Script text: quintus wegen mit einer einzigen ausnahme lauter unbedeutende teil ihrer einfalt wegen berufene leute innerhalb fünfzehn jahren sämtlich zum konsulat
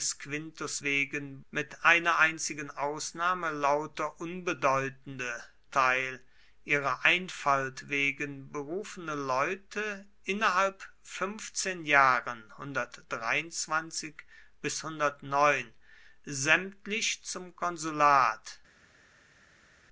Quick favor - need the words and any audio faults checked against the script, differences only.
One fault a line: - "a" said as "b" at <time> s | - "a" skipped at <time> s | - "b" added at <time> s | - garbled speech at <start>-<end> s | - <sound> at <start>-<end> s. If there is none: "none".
none